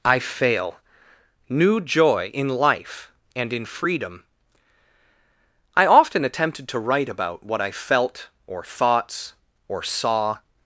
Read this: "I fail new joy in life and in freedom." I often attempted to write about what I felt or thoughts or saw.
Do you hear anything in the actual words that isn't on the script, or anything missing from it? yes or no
no